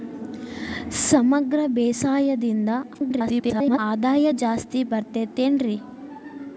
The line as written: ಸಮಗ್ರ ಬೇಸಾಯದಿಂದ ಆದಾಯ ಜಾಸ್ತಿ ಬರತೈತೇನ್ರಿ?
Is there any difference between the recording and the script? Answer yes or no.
yes